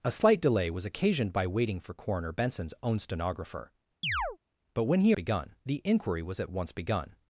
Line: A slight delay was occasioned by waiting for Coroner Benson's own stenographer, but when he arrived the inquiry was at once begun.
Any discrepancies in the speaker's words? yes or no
yes